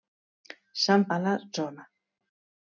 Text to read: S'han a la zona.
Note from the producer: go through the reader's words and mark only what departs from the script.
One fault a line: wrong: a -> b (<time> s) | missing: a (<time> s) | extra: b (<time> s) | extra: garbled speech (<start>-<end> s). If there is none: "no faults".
no faults